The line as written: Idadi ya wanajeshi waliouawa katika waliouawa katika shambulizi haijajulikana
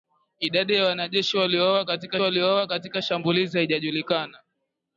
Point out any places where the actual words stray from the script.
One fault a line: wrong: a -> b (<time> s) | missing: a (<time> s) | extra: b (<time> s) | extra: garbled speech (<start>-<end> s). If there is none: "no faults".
no faults